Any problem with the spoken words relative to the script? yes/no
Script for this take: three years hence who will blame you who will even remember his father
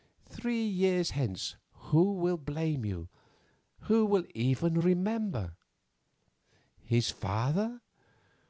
no